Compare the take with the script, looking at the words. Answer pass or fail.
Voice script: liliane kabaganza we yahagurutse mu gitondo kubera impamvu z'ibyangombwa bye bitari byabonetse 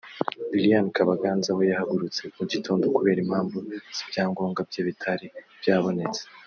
pass